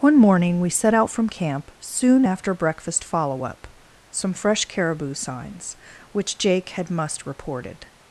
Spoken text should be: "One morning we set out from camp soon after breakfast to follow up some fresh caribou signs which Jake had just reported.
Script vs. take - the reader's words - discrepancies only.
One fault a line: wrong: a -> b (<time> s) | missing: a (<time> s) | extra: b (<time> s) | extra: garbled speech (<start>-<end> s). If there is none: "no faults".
missing: to (3.0 s)
wrong: just -> must (6.9 s)